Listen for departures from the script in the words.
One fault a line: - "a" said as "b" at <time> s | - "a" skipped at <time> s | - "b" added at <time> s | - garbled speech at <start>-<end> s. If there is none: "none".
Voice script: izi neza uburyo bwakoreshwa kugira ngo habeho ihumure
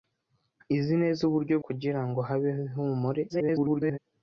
- "bwakoreshwa" skipped at 1.6 s
- garbled speech at 3.3-4.0 s